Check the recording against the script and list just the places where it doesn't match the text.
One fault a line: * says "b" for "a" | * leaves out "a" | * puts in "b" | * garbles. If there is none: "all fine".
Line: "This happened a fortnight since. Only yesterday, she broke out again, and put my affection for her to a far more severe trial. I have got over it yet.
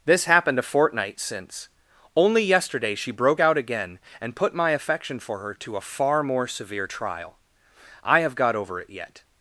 all fine